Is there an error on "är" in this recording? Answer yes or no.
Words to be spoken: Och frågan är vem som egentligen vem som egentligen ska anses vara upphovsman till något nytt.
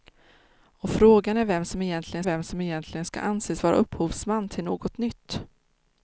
no